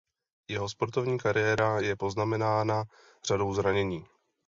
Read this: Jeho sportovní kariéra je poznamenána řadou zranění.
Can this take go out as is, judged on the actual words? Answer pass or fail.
pass